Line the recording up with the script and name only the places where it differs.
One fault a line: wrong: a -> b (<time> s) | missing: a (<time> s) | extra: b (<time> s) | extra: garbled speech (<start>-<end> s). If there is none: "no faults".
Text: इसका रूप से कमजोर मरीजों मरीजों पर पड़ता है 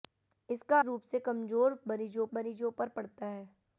no faults